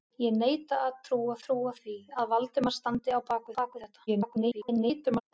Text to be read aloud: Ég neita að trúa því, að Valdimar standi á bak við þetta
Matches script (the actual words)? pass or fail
fail